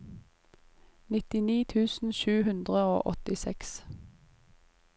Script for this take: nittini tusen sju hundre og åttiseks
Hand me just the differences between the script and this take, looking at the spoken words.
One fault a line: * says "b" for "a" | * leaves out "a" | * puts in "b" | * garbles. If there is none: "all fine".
all fine